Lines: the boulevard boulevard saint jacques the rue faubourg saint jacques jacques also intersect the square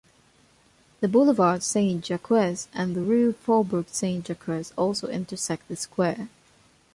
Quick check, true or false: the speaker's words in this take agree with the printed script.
false